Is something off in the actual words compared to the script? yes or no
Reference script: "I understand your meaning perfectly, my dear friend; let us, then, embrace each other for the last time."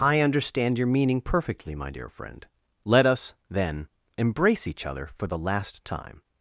no